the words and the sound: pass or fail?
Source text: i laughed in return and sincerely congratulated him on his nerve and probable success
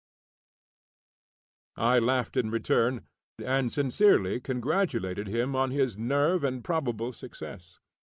pass